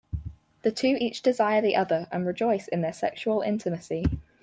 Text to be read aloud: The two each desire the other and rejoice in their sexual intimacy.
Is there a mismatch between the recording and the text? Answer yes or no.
no